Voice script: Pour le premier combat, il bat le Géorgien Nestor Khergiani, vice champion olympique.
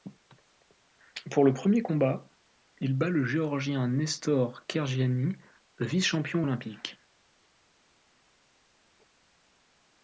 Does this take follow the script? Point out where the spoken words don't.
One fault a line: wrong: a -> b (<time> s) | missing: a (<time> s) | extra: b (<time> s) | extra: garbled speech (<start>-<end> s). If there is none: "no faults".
no faults